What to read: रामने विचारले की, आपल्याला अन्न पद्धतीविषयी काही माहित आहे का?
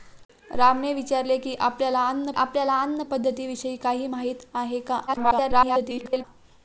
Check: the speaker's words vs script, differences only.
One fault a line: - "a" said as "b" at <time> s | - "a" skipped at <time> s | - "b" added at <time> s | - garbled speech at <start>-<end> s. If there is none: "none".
- "आपल्याला अन्न" added at 2.3 s
- garbled speech at 5.1-6.2 s